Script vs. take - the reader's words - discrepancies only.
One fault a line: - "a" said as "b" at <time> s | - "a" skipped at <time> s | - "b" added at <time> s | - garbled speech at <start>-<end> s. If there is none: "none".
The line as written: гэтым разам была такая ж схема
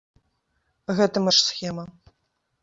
- "разам была такая" skipped at 1.2 s